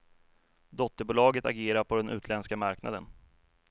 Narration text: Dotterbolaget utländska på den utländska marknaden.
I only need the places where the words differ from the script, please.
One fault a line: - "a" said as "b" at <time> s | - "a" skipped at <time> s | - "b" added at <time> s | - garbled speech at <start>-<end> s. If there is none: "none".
- "utländska" said as "agerar" at 1.4 s